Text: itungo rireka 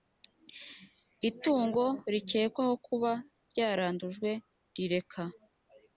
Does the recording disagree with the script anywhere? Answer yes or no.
yes